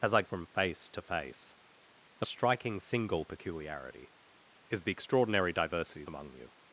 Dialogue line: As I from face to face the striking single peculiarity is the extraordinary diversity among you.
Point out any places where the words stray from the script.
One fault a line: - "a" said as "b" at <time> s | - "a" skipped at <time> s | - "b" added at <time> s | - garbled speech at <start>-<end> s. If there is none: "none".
none